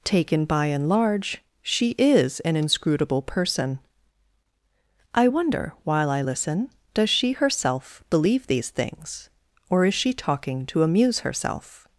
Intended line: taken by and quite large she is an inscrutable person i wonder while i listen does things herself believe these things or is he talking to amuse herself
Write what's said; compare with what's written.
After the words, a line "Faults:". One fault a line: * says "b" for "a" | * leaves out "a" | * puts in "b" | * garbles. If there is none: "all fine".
taken by and large she is an inscrutable person i wonder while i listen does she herself believe these things or is she talking to amuse herself
Faults:
* leaves out "quite"
* says "she" for "things"
* says "she" for "he"